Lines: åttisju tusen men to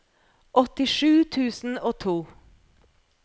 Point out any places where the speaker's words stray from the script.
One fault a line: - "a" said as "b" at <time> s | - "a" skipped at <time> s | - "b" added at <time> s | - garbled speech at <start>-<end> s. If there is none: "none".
- "men" said as "og" at 1.8 s